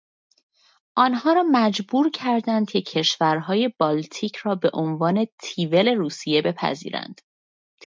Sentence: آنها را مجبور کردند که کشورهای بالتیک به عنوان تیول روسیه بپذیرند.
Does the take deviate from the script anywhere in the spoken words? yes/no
yes